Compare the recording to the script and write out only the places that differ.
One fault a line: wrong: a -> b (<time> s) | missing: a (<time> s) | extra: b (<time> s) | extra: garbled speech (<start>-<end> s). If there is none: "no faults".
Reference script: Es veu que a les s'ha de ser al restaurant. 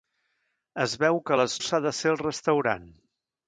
no faults